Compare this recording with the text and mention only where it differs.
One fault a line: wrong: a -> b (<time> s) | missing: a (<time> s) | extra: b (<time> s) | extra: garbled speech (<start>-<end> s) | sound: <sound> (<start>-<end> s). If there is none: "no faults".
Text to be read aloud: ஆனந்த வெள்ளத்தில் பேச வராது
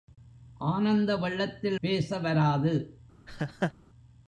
sound: laugh (3.3-3.7 s)